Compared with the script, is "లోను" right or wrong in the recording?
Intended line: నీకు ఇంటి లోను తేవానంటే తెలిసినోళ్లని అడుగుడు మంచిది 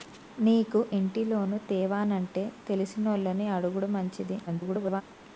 right